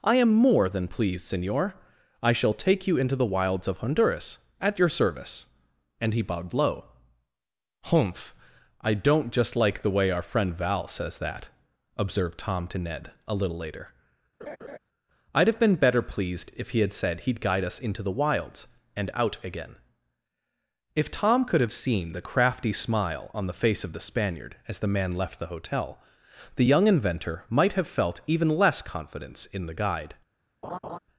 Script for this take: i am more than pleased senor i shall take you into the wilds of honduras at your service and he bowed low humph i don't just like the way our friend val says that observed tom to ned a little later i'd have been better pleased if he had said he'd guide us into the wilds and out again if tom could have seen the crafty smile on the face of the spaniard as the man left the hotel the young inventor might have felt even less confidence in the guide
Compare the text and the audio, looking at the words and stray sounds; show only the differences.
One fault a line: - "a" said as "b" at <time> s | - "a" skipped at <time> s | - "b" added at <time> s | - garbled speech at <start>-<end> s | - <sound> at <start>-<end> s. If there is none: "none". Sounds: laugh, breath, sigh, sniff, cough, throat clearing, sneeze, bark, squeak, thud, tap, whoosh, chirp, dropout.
- laugh at 14.4-14.8 s
- laugh at 30.6-31.0 s